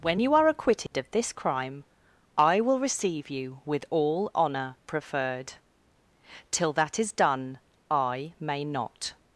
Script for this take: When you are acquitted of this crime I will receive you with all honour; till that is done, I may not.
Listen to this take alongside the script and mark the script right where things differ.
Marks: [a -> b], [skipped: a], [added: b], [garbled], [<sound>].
When you are acquitted [dropout] of this crime I will receive you with all honour; [added: preferred] till that is done, I may not.